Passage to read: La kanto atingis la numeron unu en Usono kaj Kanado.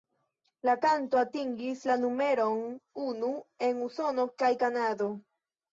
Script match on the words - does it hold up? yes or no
yes